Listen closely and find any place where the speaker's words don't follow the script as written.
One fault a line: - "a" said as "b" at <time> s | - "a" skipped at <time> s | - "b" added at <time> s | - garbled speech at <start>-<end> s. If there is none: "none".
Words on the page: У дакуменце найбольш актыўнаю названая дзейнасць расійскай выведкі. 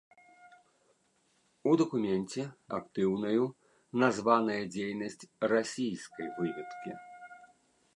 - "найбольш" skipped at 2.4 s